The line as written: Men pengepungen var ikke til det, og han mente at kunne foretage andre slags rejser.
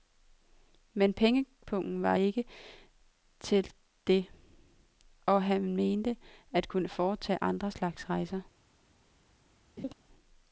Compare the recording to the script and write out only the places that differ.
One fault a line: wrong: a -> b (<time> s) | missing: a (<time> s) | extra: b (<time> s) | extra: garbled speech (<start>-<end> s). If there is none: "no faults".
no faults